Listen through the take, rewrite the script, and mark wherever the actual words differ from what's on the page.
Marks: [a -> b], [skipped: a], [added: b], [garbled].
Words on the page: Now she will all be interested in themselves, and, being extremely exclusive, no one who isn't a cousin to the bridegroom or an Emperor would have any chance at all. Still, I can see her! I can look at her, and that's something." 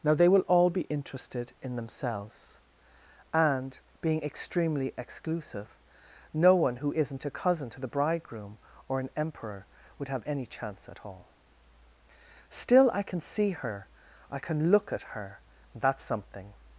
Now [she -> they] will all be interested in themselves, and, being extremely exclusive, no one who isn't a cousin to the bridegroom or an Emperor would have any chance at all. Still, I can see her! I can look at her, and that's something."